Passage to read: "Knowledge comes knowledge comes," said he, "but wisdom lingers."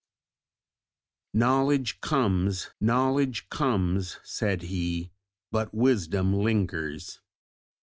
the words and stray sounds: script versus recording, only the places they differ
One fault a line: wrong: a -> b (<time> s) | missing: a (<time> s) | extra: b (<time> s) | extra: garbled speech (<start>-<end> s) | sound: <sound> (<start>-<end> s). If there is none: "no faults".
no faults